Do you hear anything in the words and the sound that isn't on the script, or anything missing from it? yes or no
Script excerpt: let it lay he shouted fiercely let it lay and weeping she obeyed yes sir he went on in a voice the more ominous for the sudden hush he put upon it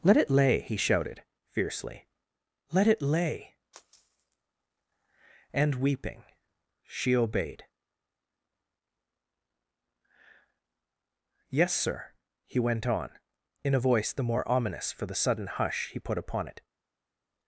no